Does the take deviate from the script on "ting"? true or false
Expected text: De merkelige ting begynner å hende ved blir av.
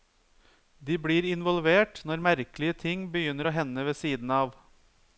false